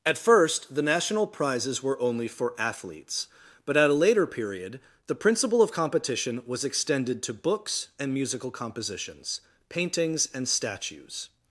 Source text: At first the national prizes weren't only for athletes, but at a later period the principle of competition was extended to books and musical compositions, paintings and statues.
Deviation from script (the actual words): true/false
true